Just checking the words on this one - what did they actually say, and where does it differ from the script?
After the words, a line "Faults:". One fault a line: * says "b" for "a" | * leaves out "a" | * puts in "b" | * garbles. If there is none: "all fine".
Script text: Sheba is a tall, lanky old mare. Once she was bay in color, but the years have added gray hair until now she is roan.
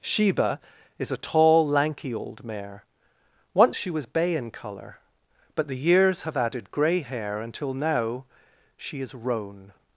Sheba is a tall, lanky old mare. Once she was bay in color, but the years have added gray hair until now she is roan.
Faults:
all fine